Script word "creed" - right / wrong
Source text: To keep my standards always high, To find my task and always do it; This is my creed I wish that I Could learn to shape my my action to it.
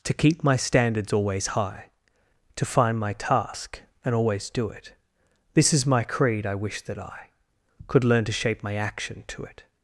right